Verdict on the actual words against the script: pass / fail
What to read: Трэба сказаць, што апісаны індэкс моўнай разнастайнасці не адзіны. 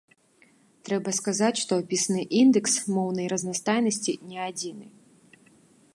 pass